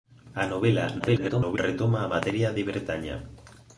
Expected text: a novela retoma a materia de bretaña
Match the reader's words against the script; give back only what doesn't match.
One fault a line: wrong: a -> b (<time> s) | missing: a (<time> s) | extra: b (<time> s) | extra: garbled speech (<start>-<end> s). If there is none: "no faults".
extra: garbled speech (1.0-1.6 s)